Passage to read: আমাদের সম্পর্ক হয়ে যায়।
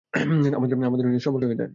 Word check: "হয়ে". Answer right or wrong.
right